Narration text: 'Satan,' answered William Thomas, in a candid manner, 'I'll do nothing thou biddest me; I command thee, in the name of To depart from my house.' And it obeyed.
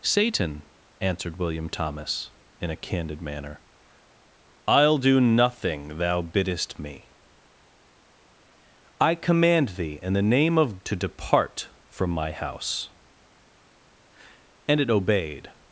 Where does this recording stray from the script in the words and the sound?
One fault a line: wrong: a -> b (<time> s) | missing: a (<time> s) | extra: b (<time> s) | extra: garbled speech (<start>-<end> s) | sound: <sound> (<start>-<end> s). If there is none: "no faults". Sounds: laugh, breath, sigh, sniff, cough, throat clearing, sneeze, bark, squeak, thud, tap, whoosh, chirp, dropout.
no faults